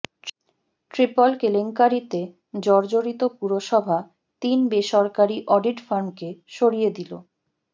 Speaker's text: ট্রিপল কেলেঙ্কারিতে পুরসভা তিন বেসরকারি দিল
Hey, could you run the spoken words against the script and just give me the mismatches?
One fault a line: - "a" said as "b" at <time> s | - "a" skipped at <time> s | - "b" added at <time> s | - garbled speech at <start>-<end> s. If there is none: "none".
- "জর্জরিত" added at 2.6 s
- "অডিট ফার্মকে সরিয়ে" added at 5.5 s